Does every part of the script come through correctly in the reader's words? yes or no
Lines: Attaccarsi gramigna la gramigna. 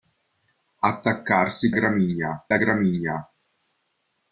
yes